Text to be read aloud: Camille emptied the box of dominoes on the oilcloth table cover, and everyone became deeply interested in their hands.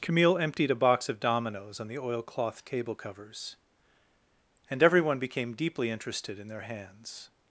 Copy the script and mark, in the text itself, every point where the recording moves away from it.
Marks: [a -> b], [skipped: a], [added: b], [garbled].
Camille emptied [the -> a] box of dominoes on the oilcloth table [cover, -> covers] and everyone became deeply interested in their hands.